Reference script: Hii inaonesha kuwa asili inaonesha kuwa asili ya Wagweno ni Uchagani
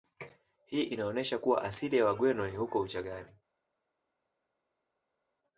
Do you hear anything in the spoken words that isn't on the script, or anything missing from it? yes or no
yes